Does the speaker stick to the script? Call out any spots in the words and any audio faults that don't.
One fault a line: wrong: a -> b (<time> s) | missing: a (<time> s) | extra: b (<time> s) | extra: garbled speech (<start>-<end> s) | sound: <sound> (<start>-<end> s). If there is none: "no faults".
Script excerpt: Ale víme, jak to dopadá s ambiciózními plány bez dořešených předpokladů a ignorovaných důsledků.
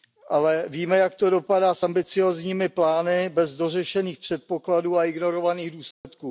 sound: dropout (5.9-6.0 s)